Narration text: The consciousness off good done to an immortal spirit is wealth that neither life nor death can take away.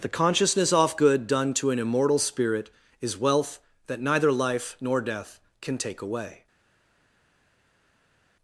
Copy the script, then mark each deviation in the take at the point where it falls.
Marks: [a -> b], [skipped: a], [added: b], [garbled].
The consciousness off good done to an immortal spirit is wealth that neither life nor death can take away.